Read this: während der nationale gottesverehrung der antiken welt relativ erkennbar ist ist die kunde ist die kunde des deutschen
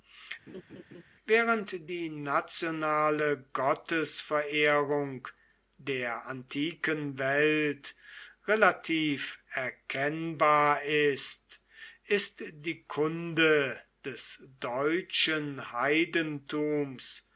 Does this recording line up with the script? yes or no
no